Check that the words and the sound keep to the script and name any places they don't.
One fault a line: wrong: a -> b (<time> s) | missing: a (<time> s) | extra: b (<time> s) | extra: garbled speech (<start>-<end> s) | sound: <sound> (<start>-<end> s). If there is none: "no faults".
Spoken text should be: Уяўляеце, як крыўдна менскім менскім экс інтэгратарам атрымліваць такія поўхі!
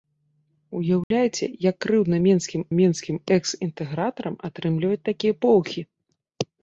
sound: dropout (1.0-1.1 s)